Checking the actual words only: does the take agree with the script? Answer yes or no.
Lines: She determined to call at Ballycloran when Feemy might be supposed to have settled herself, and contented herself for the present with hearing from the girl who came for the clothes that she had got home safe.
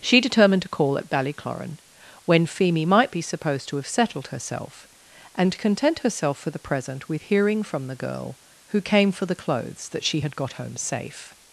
no